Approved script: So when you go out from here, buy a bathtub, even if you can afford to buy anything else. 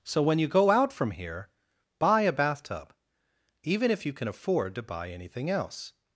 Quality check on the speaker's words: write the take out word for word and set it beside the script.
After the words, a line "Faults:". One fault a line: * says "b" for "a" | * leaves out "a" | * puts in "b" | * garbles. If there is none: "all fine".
So when you go out from here, buy a bathtub, even if you can afford to buy anything else.
Faults:
all fine